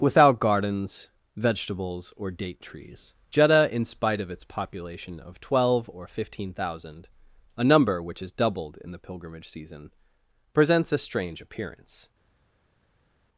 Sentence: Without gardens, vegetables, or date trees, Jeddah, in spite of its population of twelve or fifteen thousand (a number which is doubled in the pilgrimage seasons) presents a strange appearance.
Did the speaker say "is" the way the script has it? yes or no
yes